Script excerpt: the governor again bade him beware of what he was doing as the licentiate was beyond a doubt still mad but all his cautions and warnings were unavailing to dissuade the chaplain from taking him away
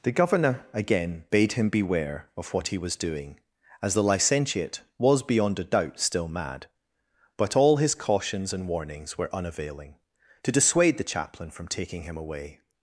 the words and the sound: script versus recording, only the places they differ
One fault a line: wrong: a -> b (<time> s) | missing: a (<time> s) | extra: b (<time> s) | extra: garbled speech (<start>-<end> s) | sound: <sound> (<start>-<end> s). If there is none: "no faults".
no faults